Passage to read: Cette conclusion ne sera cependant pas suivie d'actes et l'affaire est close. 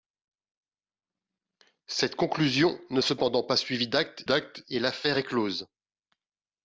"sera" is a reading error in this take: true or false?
true